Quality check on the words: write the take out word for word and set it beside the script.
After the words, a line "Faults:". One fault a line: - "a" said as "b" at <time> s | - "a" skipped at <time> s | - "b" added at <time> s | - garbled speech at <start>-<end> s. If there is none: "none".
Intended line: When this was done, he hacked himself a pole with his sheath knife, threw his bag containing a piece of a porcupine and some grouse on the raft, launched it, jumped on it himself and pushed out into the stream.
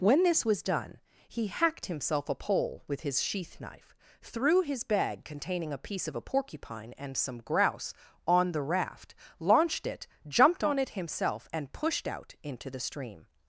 When this was done, he hacked himself a pole with his sheath knife, threw his bag containing a piece of a porcupine and some grouse on the raft, launched it, jumped on it himself and pushed out into the stream.
Faults:
none